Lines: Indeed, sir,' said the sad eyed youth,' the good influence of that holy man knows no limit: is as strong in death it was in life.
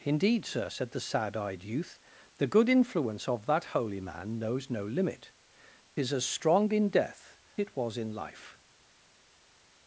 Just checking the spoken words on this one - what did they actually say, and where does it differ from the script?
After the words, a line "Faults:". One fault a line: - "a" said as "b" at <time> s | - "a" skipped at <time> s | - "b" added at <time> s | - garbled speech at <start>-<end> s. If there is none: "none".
Indeed, sir,' said the sad eyed youth,' the good influence of that holy man knows no limit: is as strong in death it was in life.
Faults:
none